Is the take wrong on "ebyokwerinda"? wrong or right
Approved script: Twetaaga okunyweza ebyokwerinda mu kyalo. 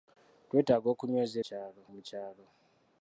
wrong